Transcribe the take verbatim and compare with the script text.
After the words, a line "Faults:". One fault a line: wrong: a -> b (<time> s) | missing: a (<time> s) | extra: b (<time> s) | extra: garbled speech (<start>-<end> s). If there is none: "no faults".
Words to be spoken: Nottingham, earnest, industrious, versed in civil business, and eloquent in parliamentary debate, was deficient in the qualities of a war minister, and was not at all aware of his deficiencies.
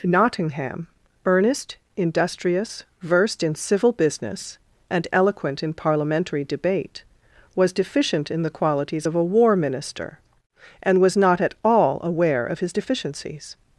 Nottingham, earnest, industrious, versed in civil business, and eloquent in parliamentary debate, was deficient in the qualities of a war minister, and was not at all aware of his deficiencies.
Faults:
no faults